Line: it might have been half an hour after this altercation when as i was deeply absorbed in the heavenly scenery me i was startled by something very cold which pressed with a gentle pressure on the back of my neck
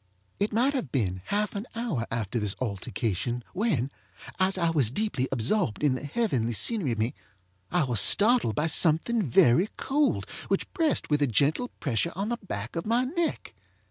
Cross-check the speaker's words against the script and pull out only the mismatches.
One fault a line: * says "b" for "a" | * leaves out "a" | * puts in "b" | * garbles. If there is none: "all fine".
all fine